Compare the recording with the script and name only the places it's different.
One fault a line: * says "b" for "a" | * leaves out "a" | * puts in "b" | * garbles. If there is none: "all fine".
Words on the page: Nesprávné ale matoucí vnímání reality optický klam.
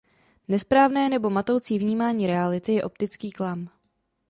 * says "nebo" for "ale"
* puts in "je"